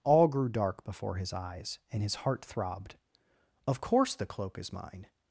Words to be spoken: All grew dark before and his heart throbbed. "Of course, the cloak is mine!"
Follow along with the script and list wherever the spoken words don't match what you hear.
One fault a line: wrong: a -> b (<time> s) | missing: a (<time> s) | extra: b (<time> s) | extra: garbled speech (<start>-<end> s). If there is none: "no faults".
extra: his eyes (1.2 s)